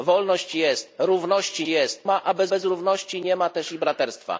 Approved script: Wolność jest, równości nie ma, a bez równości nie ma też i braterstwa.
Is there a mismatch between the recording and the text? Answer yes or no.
yes